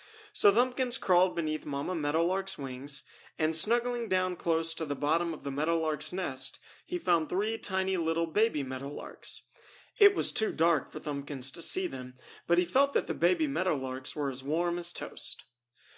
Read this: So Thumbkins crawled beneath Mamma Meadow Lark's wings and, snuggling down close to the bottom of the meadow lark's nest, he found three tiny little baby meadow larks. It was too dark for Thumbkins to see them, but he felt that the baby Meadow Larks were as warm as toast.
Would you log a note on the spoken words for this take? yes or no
no